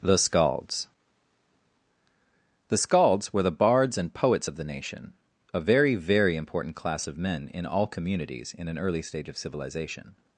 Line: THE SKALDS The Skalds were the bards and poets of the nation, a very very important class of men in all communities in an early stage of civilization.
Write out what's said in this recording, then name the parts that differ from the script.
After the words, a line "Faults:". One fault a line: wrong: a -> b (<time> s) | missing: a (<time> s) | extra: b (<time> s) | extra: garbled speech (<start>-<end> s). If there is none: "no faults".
THE SKALDS The Skalds were the bards and poets of the nation, a very very important class of men in all communities in an early stage of civilization.
Faults:
no faults